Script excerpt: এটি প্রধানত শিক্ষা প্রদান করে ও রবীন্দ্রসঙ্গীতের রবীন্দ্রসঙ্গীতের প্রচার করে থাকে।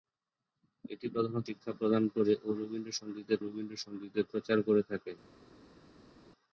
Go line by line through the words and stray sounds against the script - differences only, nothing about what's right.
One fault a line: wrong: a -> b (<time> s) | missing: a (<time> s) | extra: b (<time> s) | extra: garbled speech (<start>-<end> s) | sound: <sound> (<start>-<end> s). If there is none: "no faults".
no faults